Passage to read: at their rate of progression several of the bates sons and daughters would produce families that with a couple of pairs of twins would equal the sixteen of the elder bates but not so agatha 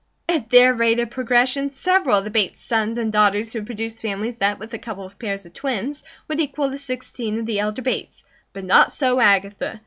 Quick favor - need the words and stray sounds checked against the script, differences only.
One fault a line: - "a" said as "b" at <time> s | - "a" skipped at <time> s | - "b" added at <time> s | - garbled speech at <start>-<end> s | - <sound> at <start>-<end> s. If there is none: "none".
none